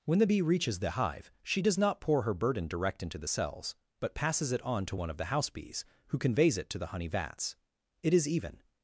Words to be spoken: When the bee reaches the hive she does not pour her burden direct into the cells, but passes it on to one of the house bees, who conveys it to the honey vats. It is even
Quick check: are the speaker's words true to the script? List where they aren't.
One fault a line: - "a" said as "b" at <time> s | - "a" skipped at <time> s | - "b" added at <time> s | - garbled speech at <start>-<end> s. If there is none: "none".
none